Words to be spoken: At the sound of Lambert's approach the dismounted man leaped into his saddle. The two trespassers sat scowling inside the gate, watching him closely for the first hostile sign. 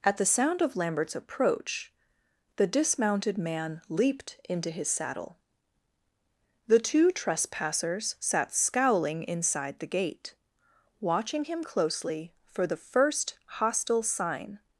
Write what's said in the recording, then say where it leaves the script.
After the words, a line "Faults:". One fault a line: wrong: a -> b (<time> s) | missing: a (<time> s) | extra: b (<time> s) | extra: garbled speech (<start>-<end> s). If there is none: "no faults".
At the sound of Lambert's approach the dismounted man leaped into his saddle. The two trespassers sat scowling inside the gate, watching him closely for the first hostile sign.
Faults:
no faults